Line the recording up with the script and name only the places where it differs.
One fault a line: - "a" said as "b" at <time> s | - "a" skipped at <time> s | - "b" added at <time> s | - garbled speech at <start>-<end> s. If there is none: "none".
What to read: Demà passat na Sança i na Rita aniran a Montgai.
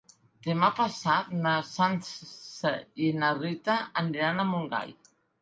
none